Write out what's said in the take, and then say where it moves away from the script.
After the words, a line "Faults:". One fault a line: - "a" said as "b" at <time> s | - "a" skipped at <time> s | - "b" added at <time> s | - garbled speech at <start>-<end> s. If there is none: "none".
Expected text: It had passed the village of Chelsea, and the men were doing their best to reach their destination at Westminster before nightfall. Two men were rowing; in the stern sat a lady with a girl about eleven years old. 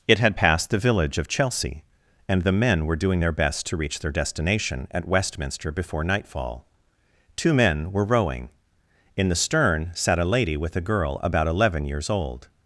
It had passed the village of Chelsea, and the men were doing their best to reach their destination at Westminster before nightfall. Two men were rowing; in the stern sat a lady with a girl about eleven years old.
Faults:
none